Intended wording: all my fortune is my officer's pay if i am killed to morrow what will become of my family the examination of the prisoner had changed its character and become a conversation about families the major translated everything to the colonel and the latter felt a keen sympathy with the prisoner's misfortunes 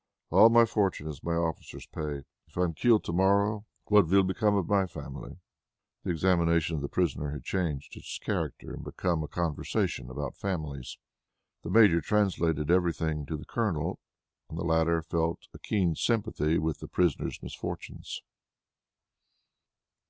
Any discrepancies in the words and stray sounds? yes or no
no